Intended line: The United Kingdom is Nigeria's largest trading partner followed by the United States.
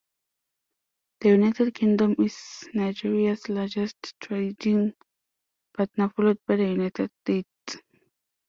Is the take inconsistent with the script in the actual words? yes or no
no